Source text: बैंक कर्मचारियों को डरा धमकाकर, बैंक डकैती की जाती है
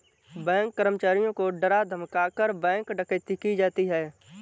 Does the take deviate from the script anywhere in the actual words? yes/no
no